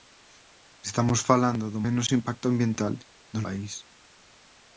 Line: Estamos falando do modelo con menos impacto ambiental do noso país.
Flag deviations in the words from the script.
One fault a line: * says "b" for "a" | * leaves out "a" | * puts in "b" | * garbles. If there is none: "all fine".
* leaves out "modelo con"
* leaves out "noso"